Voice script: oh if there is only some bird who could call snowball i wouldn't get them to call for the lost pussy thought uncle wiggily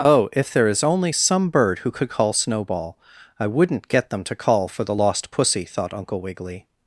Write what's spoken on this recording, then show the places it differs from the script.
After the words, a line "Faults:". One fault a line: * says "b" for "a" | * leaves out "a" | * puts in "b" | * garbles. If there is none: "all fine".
oh if there is only some bird who could call snowball i wouldn't get them to call for the lost pussy thought uncle wiggily
Faults:
all fine